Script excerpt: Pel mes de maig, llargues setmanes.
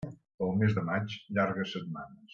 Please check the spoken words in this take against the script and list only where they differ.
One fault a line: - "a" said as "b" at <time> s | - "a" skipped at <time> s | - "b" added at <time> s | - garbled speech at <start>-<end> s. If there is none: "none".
none